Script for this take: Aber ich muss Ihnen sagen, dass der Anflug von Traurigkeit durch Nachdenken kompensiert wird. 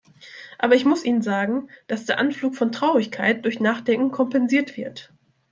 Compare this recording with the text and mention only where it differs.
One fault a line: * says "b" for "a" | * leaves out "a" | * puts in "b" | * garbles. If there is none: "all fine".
all fine